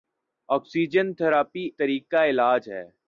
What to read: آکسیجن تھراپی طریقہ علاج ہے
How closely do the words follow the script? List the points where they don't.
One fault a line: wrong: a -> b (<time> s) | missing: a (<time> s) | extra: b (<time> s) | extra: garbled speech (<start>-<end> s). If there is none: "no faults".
no faults